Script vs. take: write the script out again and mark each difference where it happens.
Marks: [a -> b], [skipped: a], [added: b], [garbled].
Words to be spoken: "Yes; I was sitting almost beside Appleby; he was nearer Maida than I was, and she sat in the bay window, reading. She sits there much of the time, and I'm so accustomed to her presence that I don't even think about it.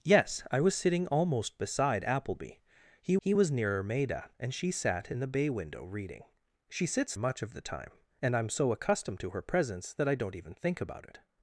"Yes; I was sitting almost beside Appleby; he [added: he] was nearer Maida [skipped: than I was,] and she sat in the bay window, reading. She sits [skipped: there] much of the time, and I'm so accustomed to her presence that I don't even think about it.